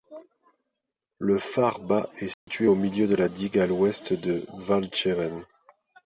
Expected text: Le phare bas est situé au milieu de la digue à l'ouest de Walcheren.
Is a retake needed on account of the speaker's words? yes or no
no